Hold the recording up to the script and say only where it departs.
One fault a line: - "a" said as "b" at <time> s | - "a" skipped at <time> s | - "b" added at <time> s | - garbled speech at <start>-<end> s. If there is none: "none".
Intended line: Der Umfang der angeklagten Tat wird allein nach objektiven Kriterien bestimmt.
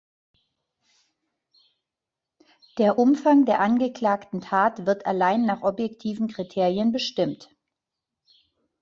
none